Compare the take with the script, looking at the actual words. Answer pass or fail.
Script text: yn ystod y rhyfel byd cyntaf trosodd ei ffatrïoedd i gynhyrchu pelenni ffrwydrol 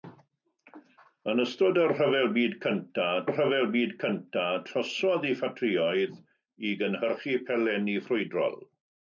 fail